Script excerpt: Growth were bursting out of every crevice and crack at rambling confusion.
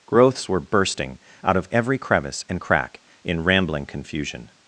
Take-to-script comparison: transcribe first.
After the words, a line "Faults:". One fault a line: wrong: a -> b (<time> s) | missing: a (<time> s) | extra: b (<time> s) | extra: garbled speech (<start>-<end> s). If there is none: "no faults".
Growths were bursting out of every crevice and crack in rambling confusion.
Faults:
wrong: Growth -> Growths (0.1 s)
wrong: at -> in (3.2 s)